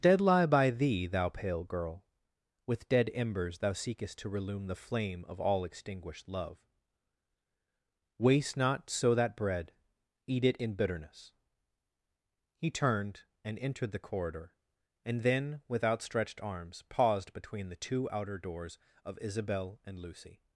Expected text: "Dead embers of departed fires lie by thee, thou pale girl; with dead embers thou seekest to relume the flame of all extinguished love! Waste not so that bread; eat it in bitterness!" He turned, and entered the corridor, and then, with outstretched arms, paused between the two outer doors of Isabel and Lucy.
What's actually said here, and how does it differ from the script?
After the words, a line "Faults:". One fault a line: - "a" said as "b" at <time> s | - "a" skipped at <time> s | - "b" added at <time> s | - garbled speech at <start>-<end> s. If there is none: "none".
"Dead lie by thee, thou pale girl; with dead embers thou seekest to relume the flame of all extinguished love! Waste not so that bread; eat it in bitterness!" He turned, and entered the corridor, and then, with outstretched arms, paused between the two outer doors of Isabel and Lucy.
Faults:
- "embers of departed fires" skipped at 0.2 s